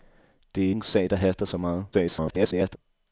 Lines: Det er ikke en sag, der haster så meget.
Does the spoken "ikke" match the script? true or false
false